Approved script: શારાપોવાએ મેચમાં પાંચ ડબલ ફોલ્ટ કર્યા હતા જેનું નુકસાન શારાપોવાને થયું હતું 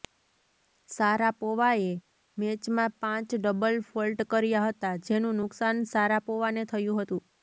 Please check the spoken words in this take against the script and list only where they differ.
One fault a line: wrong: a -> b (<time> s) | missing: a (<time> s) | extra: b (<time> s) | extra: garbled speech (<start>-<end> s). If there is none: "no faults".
no faults